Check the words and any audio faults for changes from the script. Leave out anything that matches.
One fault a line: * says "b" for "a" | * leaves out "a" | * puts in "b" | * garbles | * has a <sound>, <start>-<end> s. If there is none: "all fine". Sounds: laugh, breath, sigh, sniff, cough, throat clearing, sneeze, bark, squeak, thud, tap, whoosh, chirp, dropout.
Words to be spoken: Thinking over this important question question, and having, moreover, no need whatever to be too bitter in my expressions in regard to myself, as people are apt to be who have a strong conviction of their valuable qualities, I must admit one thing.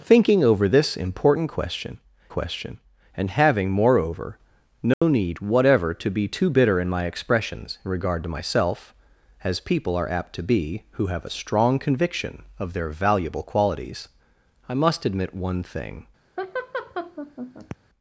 * has a dropout, 4.9-5.0 s
* has a laugh, 16.4-17.8 s